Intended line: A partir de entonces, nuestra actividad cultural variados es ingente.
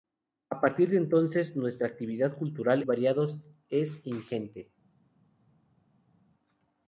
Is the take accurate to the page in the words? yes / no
yes